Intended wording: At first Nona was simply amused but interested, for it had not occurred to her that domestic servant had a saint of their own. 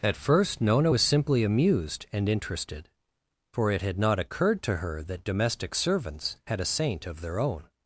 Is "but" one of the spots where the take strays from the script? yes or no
yes